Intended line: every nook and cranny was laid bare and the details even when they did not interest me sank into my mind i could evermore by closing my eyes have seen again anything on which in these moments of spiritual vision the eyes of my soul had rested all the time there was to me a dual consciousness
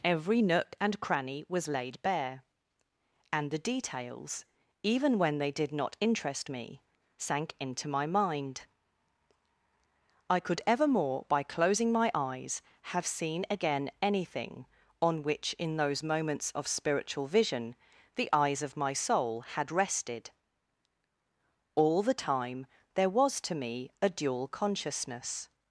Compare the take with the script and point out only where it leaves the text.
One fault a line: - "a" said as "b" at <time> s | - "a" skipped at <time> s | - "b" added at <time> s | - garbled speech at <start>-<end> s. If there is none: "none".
- "these" said as "those" at 15.8 s